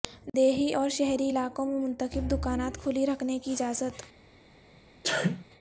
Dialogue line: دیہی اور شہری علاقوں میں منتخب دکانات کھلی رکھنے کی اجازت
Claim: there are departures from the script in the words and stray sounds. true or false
true